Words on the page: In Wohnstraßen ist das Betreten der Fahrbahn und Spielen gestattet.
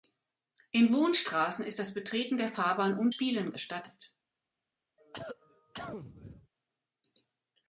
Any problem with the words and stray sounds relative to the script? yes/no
yes